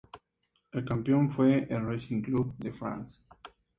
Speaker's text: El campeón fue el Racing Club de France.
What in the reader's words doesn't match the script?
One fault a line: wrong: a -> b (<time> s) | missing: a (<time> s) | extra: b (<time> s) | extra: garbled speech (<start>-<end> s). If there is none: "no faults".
no faults